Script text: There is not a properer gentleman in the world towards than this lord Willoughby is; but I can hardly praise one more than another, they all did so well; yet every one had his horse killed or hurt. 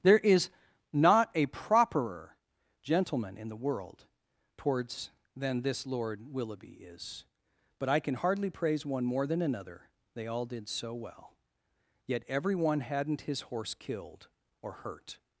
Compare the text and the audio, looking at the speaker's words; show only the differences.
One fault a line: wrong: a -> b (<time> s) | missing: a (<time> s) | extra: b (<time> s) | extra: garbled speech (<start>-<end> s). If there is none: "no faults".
wrong: had -> hadn't (12.8 s)